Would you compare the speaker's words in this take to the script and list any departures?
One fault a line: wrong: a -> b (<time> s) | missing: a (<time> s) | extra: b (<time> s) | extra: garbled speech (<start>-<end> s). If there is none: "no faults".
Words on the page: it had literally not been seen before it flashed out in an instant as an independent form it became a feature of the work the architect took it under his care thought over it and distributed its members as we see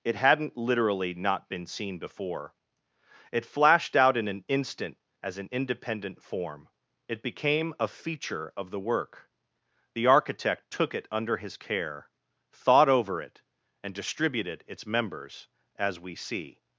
wrong: had -> hadn't (0.1 s)